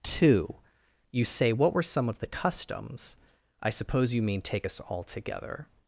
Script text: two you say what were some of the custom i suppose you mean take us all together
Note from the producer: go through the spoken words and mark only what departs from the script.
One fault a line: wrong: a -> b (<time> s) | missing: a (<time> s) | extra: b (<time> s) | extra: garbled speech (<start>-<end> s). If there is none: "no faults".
wrong: custom -> customs (2.3 s)